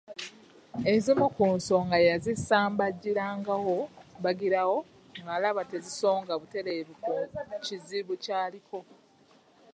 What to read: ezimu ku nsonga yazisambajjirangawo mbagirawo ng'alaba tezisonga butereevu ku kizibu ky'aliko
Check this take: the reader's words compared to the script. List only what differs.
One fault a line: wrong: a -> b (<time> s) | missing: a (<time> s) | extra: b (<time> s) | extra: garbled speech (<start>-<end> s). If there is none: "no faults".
no faults